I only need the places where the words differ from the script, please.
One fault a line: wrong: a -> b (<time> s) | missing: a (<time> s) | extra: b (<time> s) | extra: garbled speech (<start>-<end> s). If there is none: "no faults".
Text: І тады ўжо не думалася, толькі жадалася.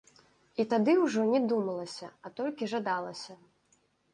extra: а (2.2 s)